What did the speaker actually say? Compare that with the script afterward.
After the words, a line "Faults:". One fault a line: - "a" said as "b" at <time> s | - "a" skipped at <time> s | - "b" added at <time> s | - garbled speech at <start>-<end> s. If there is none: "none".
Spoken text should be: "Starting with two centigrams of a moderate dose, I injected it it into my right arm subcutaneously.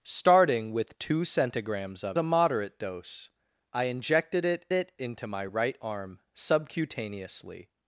"Starting with two centigrams of a moderate dose, I injected it it into my right arm subcutaneously.
Faults:
none